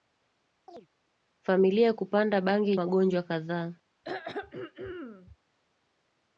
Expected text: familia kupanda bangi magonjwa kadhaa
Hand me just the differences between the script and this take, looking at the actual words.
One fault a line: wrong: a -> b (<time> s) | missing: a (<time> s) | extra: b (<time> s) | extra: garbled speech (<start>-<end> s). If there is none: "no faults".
no faults